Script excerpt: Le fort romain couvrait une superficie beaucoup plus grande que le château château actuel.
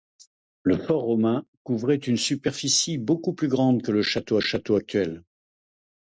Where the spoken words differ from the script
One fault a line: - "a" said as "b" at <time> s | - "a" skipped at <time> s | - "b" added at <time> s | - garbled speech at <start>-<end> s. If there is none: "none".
none